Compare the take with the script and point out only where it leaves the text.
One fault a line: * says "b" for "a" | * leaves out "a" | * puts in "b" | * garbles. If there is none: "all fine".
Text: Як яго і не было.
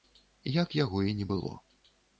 all fine